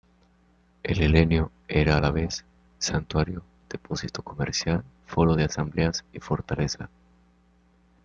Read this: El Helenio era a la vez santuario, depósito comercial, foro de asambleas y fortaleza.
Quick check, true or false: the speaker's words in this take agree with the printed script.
true